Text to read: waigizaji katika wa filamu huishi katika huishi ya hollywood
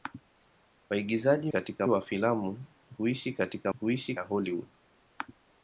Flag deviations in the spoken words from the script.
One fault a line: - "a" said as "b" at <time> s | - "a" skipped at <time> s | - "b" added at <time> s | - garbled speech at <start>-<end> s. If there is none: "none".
none